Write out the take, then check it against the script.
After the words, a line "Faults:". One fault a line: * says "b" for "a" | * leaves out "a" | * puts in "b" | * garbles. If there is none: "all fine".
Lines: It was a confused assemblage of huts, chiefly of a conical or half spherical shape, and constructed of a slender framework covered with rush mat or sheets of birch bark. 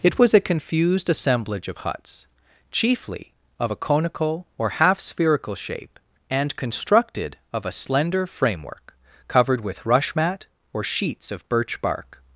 It was a confused assemblage of huts, chiefly of a conical or half spherical shape, and constructed of a slender framework covered with rush mat or sheets of birch bark.
Faults:
all fine